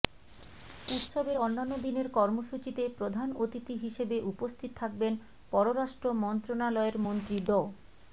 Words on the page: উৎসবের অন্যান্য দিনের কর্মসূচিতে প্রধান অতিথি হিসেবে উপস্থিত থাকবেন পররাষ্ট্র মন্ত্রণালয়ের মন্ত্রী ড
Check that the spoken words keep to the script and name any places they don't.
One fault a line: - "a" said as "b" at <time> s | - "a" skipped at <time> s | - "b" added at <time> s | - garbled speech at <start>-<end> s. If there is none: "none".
none